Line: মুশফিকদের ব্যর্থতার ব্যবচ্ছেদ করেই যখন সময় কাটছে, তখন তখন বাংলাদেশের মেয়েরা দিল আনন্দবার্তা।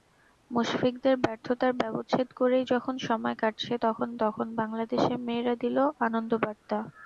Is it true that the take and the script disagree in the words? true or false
false